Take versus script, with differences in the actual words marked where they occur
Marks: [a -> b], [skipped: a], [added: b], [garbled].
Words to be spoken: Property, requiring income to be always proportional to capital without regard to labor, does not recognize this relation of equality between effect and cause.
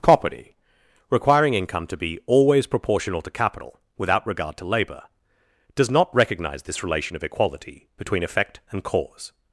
Property, requiring income to be always proportional to capital without regard to labor, does not recognize this relation of equality between effect and cause.